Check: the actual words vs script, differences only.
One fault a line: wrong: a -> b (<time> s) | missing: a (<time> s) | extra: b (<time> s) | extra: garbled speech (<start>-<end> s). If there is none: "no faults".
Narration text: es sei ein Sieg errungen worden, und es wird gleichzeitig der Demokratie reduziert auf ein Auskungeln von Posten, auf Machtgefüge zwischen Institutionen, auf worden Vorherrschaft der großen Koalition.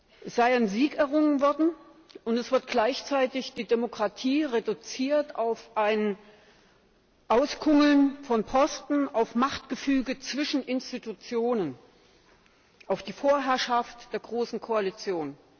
wrong: der -> die (3.5 s)
wrong: worden -> die (13.0 s)